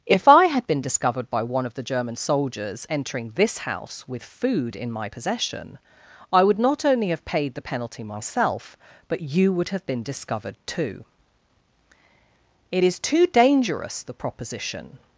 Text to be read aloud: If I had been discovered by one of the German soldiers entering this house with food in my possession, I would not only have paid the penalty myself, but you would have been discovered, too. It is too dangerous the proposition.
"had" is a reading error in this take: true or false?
false